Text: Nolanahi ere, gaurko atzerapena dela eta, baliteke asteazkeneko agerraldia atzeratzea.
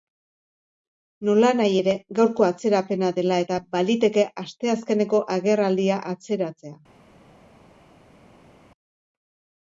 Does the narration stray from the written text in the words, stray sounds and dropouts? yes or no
no